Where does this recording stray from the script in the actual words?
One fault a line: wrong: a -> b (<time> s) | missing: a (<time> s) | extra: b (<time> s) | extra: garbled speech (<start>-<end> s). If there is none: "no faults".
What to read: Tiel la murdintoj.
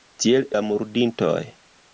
no faults